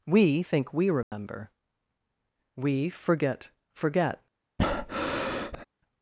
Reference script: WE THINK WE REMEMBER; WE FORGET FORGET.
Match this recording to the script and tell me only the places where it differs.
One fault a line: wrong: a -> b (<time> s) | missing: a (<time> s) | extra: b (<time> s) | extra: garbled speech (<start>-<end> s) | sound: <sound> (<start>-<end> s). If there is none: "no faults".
sound: dropout (1.0-1.1 s)
sound: breath (4.6-5.7 s)